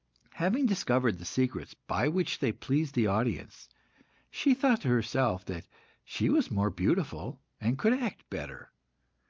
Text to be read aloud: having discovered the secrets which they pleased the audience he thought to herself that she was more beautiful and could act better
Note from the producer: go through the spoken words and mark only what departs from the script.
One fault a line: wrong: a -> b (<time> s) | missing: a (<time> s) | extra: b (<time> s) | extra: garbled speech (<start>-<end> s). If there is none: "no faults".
extra: by (1.8 s)
wrong: he -> she (4.3 s)